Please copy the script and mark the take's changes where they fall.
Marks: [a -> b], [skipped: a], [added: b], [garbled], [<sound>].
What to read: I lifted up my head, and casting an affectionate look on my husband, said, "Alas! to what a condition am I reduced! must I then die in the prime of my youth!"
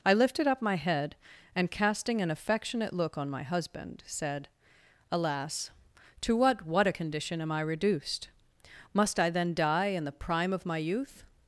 I lifted up my head, and casting an affectionate look on my husband, said, "Alas! to what [added: what] a condition am I reduced! must I then die in the prime of my youth!"